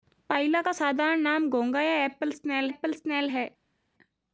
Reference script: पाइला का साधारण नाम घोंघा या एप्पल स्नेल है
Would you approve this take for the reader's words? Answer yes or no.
no